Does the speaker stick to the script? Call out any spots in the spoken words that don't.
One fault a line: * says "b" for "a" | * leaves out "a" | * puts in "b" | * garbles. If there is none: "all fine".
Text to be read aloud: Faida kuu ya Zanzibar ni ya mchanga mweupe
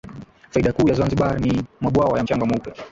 * puts in "mabwawa"